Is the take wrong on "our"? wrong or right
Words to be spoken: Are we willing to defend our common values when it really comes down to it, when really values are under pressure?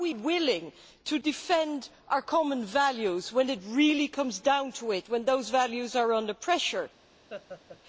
right